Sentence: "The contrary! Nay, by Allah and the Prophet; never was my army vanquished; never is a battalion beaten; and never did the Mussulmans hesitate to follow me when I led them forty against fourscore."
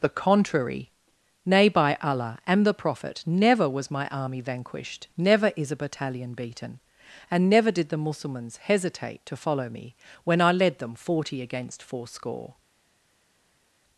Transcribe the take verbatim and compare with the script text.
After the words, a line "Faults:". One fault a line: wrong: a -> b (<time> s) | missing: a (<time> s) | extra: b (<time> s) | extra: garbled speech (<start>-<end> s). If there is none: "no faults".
"The contrary! Nay, by Allah and the Prophet; never was my army vanquished; never is a battalion beaten; and never did the Mussulmans hesitate to follow me when I led them forty against fourscore."
Faults:
no faults